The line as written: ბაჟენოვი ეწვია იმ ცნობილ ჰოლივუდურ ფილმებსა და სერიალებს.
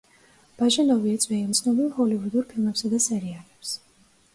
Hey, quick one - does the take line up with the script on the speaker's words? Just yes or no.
yes